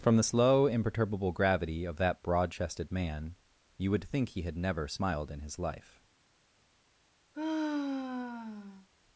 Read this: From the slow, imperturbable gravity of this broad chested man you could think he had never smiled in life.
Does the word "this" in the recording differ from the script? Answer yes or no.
yes